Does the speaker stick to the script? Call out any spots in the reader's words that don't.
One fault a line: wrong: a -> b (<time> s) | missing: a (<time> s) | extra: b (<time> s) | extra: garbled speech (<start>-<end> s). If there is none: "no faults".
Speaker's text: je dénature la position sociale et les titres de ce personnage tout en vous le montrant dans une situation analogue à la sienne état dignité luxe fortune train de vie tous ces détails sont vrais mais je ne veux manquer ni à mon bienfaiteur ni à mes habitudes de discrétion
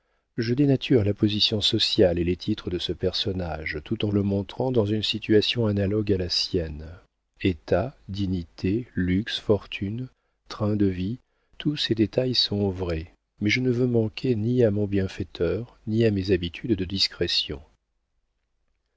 missing: vous (4.1 s)